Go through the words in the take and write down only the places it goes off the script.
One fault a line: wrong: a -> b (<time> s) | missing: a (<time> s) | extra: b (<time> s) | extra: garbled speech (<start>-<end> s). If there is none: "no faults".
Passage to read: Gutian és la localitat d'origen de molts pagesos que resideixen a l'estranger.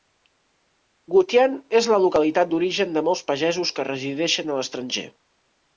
no faults